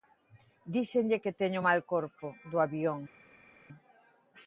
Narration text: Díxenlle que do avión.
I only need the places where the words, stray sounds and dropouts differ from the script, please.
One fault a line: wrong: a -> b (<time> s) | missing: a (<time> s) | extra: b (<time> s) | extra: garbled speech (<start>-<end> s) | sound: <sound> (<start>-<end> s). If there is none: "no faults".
extra: teño mal corpo (1.4 s)